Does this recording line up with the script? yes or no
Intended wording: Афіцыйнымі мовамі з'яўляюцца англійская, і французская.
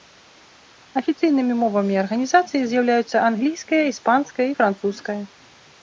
no